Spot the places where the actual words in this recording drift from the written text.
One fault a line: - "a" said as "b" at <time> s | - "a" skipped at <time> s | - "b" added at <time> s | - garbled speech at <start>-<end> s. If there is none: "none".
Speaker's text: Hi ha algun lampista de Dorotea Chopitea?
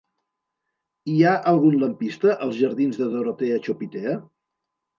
- "als jardins" added at 2.5 s